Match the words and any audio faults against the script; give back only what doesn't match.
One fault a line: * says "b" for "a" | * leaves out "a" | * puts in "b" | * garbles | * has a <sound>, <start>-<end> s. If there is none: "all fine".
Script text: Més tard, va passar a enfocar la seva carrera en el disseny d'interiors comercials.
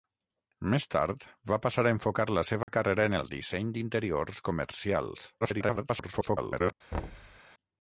* has a dropout, 2.6-2.7 s
* garbles
* has a thud, 6.9-7.4 s